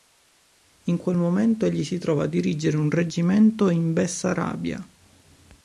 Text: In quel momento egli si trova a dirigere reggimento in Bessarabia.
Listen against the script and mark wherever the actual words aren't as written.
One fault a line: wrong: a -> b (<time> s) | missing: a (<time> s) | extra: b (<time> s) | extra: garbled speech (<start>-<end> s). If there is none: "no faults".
extra: un (2.8 s)